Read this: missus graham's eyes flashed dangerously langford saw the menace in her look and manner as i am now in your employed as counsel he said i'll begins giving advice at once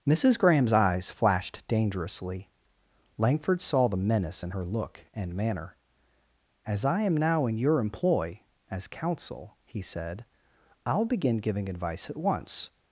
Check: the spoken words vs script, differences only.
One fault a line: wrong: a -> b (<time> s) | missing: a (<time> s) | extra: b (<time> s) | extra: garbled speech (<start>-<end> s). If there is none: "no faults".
wrong: employed -> employ (7.8 s)
wrong: begins -> begin (11.1 s)